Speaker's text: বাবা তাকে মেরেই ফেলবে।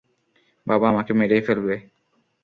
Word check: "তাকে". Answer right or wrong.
wrong